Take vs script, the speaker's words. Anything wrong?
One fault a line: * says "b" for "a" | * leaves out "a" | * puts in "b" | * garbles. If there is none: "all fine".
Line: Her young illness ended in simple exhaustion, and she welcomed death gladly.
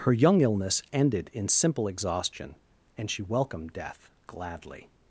all fine